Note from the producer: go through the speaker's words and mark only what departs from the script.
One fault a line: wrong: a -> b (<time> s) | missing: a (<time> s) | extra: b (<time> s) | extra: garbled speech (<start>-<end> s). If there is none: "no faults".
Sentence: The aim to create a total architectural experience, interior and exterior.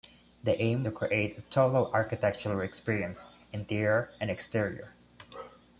no faults